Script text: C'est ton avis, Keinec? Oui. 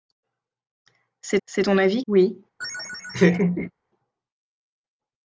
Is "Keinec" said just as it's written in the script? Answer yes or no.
no